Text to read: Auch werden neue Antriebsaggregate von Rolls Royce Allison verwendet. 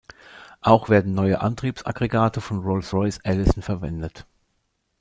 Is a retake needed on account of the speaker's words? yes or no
no